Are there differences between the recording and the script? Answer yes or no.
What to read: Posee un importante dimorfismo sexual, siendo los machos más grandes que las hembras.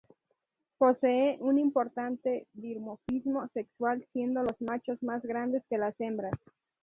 no